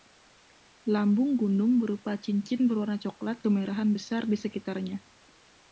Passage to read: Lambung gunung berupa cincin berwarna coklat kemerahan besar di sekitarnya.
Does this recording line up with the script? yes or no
yes